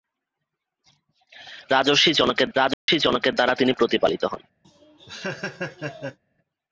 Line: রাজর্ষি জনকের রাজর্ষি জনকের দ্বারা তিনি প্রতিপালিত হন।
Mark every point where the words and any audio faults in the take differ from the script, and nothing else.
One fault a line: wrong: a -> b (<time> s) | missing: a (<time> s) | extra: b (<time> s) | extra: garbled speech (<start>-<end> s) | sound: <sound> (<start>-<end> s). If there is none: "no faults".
sound: dropout (2.7-2.9 s)
sound: laugh (4.6-6.2 s)